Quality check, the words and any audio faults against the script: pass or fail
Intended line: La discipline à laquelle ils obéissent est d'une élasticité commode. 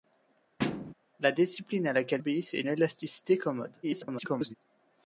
fail